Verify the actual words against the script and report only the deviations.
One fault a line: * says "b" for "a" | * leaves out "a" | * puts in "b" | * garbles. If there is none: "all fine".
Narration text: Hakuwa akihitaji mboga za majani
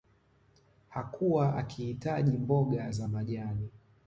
all fine